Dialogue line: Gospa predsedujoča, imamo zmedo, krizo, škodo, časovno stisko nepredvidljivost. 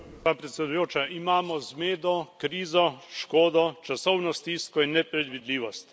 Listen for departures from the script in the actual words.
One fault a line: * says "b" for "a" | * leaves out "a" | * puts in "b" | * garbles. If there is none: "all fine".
* puts in "in"